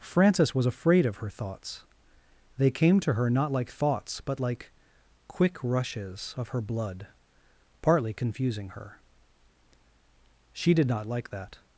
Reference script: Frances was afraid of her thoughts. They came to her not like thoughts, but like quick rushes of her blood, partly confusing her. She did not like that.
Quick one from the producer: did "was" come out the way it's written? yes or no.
yes